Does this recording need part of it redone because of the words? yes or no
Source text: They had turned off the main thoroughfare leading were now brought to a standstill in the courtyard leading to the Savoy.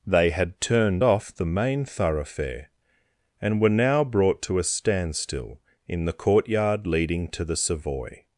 yes